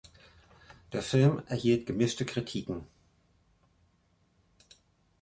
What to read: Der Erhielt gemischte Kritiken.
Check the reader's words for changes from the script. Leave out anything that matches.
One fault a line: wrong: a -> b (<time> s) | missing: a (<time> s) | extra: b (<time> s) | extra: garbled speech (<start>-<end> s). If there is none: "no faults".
extra: Film (1.0 s)